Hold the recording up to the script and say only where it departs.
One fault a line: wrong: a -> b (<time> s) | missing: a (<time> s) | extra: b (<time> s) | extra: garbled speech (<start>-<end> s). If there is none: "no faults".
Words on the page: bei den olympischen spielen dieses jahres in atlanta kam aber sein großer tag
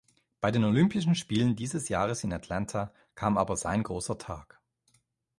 no faults